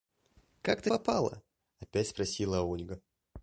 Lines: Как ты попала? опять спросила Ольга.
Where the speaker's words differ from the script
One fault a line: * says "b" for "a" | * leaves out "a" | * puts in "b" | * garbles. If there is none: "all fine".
all fine